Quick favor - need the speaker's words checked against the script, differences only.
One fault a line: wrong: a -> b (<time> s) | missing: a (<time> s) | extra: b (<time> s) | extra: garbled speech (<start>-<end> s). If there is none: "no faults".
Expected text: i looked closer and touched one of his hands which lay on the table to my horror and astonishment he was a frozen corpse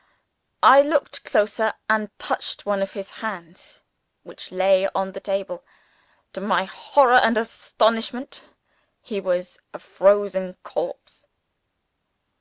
no faults